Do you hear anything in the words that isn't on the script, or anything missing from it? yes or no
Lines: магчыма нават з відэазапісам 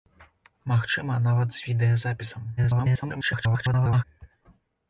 yes